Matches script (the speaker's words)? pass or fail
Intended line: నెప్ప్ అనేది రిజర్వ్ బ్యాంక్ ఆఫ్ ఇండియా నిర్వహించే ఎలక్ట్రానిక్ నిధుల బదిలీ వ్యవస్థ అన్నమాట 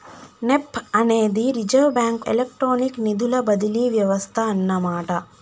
fail